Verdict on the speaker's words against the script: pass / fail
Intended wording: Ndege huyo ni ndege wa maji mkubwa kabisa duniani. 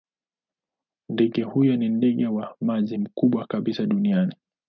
pass